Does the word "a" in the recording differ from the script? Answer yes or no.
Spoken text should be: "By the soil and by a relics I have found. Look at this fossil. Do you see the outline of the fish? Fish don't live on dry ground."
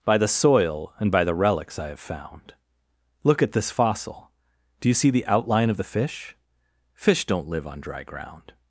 yes